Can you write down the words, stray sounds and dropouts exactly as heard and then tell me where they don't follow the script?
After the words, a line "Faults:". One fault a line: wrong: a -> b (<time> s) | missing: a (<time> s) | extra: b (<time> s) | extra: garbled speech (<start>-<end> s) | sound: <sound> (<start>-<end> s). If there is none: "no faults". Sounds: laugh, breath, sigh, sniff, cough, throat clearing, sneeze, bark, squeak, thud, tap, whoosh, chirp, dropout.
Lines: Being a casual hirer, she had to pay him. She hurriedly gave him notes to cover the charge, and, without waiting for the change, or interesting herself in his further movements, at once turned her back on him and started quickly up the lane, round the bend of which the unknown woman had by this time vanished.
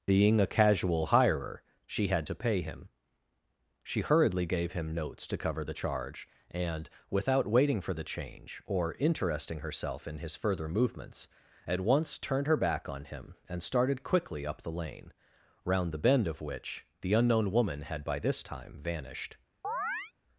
Being a casual hirer, she had to pay him. She hurriedly gave him notes to cover the charge, and, without waiting for the change, or interesting herself in his further movements, at once turned her back on him and started quickly up the lane, round the bend of which the unknown woman had by this time vanished.
Faults:
sound: chirp (19.6-20.1 s)